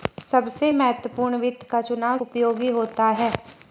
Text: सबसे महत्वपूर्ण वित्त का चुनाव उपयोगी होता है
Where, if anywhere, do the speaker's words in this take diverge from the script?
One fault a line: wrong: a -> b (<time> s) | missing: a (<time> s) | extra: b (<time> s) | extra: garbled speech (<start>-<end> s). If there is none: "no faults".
no faults